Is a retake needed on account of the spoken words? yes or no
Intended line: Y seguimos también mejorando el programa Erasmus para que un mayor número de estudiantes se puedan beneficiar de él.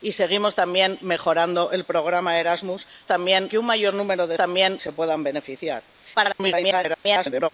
yes